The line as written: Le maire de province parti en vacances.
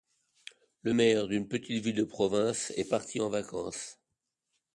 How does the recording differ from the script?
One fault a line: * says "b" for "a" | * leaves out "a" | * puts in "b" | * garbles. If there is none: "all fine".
* puts in "d'une petite ville"
* puts in "est"